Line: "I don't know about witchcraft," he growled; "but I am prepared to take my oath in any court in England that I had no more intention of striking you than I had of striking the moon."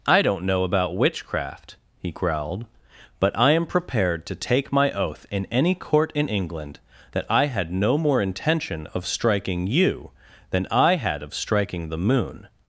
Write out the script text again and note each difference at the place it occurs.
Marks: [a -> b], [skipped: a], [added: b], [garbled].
"I don't know about witchcraft," he growled; "but I am prepared to take my oath in any court in England that I had no more intention of striking you than I had of striking the moon."